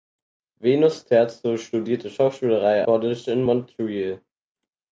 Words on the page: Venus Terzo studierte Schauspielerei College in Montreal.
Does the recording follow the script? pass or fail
pass